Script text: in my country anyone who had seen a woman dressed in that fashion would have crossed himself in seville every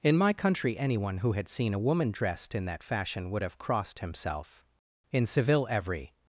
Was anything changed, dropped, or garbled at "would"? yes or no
no